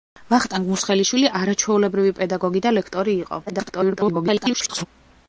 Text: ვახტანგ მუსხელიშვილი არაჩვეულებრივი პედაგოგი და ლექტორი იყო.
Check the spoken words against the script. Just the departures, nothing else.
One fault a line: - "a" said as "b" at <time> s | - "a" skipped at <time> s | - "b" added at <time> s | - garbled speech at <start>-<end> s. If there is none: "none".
- garbled speech at 3.5-4.9 s